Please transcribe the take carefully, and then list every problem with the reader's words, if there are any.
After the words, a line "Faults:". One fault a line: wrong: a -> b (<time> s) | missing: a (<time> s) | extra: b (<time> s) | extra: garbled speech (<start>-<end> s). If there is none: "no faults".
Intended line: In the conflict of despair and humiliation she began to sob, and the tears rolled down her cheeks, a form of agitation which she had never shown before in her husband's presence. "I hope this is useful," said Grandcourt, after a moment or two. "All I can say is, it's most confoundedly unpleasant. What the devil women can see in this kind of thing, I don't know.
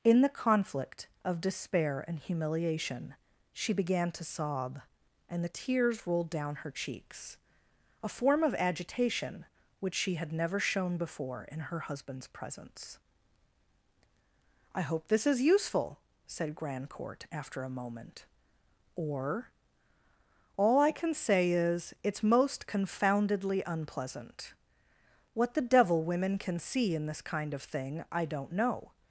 In the conflict of despair and humiliation she began to sob, and the tears rolled down her cheeks, a form of agitation which she had never shown before in her husband's presence. "I hope this is useful," said Grandcourt, after a moment or. "All I can say is, it's most confoundedly unpleasant. What the devil women can see in this kind of thing, I don't know.
Faults:
missing: two (19.5 s)